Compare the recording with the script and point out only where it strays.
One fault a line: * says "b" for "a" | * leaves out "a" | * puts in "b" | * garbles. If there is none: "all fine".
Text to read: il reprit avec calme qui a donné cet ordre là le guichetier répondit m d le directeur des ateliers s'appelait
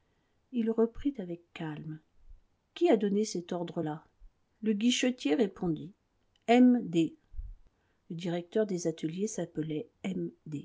all fine